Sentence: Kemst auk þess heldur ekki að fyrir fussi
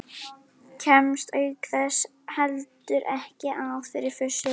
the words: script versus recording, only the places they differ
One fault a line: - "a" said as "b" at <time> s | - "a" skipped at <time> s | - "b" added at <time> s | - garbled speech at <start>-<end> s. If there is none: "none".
none